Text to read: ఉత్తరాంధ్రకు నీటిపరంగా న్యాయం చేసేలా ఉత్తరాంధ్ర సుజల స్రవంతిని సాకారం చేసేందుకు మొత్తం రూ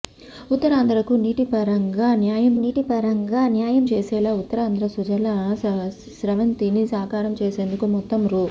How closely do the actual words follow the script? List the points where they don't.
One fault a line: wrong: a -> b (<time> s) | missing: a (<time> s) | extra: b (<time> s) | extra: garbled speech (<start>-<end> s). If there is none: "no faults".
extra: నీటిపరంగా న్యాయం (2.5 s)